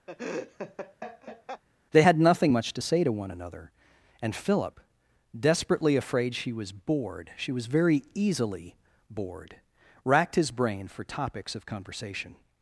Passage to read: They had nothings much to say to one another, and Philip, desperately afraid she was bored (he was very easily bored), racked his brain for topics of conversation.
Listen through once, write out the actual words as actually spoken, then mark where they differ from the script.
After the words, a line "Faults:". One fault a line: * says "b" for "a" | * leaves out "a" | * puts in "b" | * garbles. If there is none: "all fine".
They had nothing much to say to one another, and Philip, desperately afraid she was bored (she was very easily bored), racked his brain for topics of conversation.
Faults:
* says "nothing" for "nothings"
* says "she" for "he"